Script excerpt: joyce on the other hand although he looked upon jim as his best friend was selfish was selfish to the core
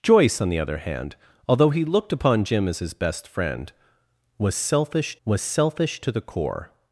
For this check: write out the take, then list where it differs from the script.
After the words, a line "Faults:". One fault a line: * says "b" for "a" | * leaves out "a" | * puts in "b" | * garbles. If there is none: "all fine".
joyce on the other hand although he looked upon jim as his best friend was selfish was selfish to the core
Faults:
all fine